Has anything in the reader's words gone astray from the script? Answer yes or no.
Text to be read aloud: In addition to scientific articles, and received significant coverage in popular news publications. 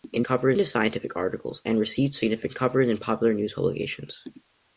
yes